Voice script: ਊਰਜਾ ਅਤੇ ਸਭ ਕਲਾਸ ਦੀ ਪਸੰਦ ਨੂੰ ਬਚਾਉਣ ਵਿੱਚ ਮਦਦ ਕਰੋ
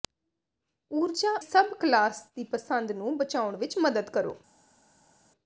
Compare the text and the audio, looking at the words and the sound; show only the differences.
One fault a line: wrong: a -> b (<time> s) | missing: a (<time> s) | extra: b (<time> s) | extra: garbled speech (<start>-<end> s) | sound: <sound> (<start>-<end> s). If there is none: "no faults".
missing: ਅਤੇ (1.4 s)